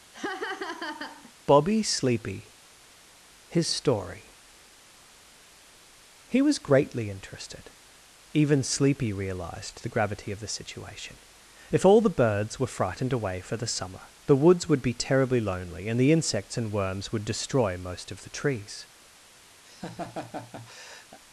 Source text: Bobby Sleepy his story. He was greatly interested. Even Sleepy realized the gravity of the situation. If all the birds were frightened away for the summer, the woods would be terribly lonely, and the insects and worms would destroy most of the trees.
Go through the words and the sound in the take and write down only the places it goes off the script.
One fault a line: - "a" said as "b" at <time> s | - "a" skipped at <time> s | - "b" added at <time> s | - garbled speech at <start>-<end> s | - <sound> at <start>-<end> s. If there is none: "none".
- laugh at 0.1-1.3 s
- laugh at 19.6-21.2 s